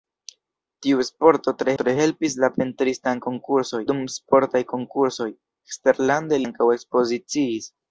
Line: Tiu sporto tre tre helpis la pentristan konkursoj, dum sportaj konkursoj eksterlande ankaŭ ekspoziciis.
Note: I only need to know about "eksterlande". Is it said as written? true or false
true